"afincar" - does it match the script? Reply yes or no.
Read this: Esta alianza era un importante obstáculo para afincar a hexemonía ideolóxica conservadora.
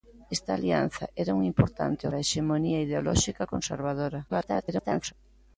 no